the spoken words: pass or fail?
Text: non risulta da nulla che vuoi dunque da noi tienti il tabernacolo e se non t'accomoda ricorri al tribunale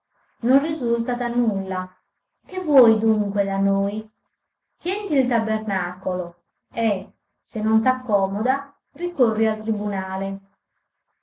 pass